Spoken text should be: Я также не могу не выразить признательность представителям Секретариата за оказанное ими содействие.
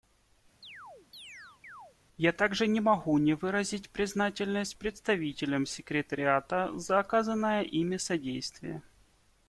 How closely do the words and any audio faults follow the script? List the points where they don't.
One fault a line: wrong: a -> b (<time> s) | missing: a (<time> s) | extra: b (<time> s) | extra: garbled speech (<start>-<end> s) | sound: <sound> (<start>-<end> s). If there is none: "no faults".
sound: chirp (0.6-2.0 s)